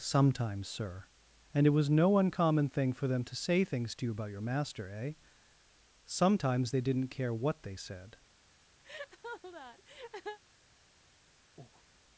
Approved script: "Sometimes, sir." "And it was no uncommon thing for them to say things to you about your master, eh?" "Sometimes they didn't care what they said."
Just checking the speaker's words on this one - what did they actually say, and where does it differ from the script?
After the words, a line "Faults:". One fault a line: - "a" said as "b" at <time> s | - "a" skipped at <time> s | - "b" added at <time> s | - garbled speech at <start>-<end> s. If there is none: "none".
"Sometimes, sir." "And it was no uncommon thing for them to say things to you about your master, eh?" "Sometimes they didn't care what they said."
Faults:
none